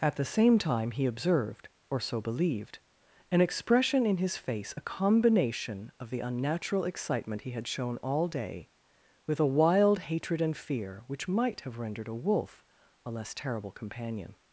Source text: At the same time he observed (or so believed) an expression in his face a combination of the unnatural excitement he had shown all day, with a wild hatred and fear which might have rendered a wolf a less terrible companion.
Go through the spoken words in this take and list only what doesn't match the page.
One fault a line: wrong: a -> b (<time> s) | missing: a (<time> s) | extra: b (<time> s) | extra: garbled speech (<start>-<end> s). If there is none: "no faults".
no faults